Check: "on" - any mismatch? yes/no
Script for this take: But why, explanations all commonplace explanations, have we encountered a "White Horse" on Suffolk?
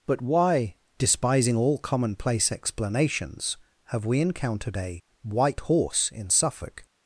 yes